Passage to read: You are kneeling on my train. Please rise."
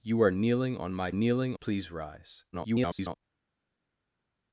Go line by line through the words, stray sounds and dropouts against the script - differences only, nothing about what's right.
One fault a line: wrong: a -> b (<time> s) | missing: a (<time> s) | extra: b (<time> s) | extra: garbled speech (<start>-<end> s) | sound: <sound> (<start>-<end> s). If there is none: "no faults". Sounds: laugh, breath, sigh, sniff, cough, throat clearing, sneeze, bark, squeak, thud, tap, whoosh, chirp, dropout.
wrong: train -> kneeling (1.1 s)
extra: garbled speech (2.5-3.2 s)